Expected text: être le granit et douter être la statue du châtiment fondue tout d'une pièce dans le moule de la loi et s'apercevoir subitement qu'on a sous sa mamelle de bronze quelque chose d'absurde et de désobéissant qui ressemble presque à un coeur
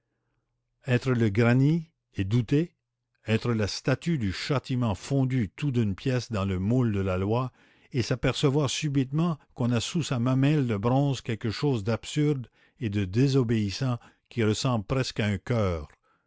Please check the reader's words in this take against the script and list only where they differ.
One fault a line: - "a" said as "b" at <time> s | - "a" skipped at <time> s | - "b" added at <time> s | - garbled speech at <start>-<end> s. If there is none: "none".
none